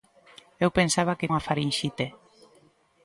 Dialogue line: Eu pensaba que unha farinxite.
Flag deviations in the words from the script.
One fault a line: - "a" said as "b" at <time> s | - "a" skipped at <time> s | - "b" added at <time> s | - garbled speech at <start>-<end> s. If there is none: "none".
none